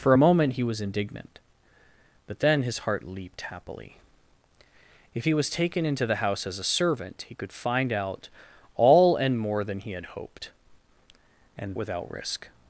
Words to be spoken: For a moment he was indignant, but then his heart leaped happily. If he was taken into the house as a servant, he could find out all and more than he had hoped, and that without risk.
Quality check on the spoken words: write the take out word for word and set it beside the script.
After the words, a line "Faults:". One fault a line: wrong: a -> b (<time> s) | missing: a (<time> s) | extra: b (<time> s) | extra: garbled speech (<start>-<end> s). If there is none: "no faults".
For a moment he was indignant, but then his heart leaped happily. If he was taken into the house as a servant, he could find out all and more than he had hoped, and without risk.
Faults:
missing: that (11.7 s)